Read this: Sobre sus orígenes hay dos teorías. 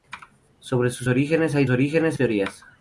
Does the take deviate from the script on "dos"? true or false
true